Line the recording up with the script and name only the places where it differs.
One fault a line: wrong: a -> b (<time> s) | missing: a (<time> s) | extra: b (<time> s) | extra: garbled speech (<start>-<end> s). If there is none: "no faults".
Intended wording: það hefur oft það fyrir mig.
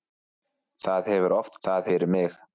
no faults